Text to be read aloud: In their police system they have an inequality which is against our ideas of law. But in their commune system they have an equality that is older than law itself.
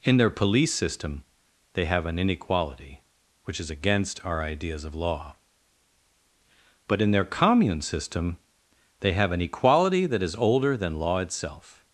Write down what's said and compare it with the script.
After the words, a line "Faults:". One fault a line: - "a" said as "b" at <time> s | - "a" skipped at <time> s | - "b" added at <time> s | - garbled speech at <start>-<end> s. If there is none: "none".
In their police system they have an inequality which is against our ideas of law. But in their commune system they have an equality that is older than law itself.
Faults:
none